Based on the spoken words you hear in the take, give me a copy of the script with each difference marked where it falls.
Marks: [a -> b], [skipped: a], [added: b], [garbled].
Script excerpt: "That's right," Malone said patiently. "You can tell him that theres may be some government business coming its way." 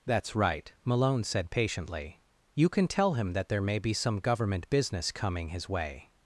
"That's right," Malone said patiently. "You can tell him that [theres -> there] may be some government business coming [its -> his] way."